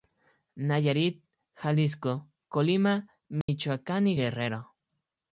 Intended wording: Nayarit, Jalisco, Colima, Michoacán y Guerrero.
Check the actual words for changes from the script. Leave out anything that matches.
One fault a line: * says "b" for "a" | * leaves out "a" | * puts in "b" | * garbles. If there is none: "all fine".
all fine